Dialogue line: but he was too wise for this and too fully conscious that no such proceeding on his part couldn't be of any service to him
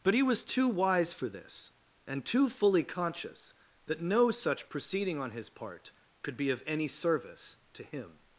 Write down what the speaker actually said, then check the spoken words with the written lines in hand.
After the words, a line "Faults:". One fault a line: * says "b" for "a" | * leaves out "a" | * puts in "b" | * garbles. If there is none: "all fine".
but he was too wise for this and too fully conscious that no such proceeding on his part could be of any service to him
Faults:
* says "could" for "couldn't"